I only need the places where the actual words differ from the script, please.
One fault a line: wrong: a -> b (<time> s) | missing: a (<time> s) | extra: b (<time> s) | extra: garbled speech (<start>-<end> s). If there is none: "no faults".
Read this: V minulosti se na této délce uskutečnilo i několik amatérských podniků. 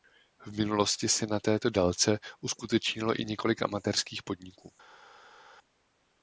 no faults